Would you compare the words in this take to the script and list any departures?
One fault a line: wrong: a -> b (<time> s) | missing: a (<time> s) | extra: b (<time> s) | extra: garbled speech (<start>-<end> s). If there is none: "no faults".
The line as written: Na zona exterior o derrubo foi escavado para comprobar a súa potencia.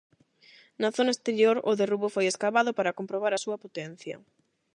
no faults